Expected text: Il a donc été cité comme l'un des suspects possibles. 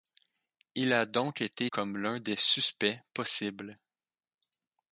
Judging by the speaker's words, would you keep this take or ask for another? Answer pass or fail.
fail